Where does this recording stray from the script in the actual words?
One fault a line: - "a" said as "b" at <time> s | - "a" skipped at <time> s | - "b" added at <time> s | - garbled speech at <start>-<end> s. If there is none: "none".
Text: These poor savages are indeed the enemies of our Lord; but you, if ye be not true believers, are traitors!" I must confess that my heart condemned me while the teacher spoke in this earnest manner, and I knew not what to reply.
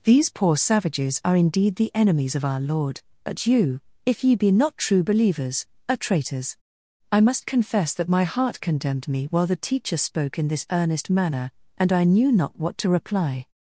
none